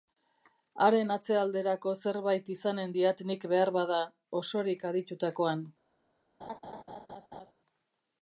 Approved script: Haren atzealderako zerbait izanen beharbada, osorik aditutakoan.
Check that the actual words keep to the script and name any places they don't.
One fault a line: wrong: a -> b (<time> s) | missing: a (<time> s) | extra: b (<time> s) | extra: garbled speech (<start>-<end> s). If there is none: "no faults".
extra: diat nik (3.0 s)